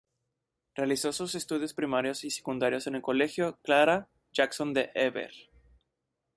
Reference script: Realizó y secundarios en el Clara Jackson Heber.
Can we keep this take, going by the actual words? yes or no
no